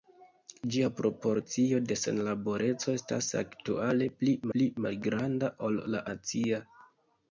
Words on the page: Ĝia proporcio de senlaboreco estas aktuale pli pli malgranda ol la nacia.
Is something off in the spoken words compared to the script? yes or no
no